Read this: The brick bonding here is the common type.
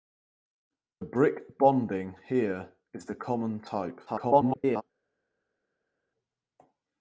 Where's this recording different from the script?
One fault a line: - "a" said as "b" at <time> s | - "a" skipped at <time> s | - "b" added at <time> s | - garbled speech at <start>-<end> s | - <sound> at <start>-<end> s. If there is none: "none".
- garbled speech at 4.1-4.8 s